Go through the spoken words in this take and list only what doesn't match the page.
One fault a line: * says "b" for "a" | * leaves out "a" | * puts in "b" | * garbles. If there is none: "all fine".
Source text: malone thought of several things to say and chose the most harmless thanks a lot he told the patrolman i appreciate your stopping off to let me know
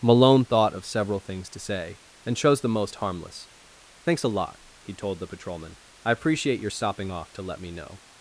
all fine